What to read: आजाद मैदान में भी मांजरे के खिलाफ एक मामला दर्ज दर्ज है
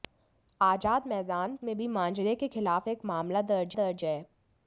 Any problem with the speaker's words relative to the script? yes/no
no